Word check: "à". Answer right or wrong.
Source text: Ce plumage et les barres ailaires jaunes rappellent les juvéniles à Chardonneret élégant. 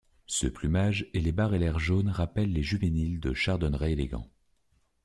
wrong